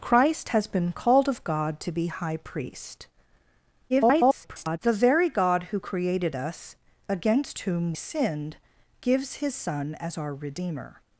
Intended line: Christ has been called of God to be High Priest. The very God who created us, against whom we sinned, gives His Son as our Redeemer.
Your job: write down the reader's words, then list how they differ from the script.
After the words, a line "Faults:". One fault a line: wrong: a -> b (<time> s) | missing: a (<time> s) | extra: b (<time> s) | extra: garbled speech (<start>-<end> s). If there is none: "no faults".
Christ has been called of God to be High Priest. [garbled] The very God who created us, against whom sinned, gives His Son as our Redeemer.
Faults:
extra: garbled speech (3.9-4.8 s)
missing: we (7.9 s)